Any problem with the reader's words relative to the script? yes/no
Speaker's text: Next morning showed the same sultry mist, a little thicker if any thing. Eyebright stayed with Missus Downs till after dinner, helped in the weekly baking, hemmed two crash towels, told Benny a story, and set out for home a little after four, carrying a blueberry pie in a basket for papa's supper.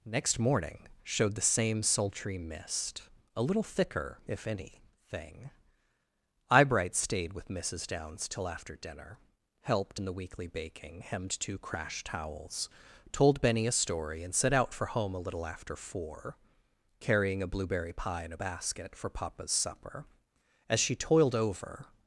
yes